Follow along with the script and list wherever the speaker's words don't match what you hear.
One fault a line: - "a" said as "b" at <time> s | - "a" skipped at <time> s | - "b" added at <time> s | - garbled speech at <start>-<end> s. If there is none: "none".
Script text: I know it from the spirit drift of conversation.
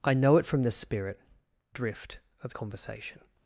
none